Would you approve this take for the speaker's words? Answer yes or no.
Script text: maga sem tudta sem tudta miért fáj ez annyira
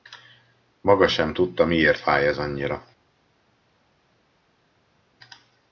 no